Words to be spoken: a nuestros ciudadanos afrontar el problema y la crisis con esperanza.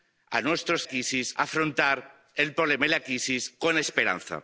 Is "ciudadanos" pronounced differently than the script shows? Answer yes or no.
yes